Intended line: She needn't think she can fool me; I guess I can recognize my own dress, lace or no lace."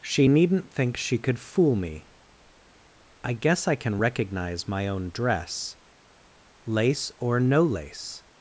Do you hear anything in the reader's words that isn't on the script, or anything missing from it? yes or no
yes